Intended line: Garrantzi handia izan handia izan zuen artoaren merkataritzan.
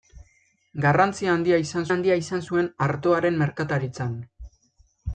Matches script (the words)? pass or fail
pass